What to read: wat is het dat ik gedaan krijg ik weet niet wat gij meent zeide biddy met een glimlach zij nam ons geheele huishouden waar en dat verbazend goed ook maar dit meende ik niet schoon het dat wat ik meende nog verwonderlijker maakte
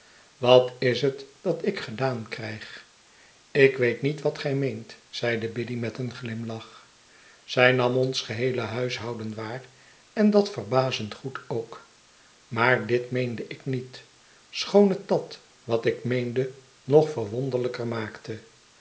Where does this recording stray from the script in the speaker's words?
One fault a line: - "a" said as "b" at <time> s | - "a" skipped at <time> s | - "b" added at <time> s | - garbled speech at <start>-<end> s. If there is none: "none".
none